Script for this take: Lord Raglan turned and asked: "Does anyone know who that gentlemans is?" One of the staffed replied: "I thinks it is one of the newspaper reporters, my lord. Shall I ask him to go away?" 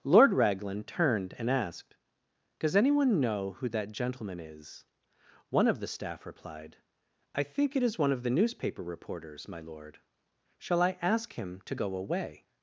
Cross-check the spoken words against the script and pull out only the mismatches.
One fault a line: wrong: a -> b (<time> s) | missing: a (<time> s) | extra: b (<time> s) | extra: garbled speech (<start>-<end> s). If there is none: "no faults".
wrong: gentlemans -> gentleman (3.9 s)
wrong: staffed -> staff (5.9 s)
wrong: thinks -> think (7.4 s)